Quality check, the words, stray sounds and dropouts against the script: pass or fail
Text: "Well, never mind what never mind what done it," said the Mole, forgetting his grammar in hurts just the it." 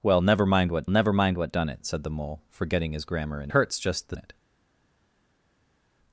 pass